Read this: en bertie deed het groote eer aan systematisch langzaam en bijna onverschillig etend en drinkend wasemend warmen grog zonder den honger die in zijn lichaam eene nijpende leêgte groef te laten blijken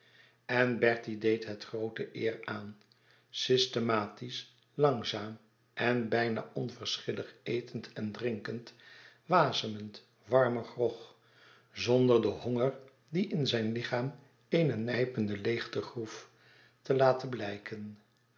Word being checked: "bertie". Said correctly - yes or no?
yes